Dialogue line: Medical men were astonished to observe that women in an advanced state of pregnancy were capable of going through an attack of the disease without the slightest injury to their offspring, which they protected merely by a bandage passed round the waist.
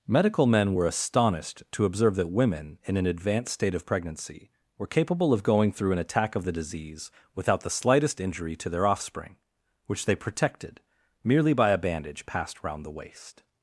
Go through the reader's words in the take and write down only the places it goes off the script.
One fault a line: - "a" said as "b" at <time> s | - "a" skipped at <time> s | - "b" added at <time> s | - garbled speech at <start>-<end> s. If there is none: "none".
none